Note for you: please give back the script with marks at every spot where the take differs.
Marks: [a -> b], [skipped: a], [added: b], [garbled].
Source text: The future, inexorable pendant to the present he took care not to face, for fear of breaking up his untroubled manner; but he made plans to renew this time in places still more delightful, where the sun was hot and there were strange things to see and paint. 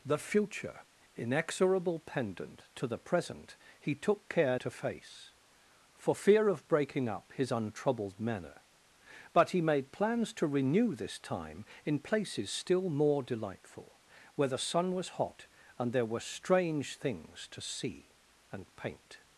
The future, inexorable pendant to the present he took care [skipped: not] to face, for fear of breaking up his untroubled manner; but he made plans to renew this time in places still more delightful, where the sun was hot and there were strange things to see and paint.